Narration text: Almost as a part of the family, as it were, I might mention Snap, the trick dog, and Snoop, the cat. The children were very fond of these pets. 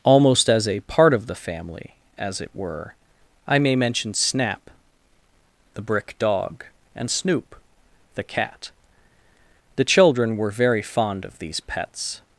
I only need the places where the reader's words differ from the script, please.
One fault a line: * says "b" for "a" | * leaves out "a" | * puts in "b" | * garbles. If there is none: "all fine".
* says "may" for "might"
* says "brick" for "trick"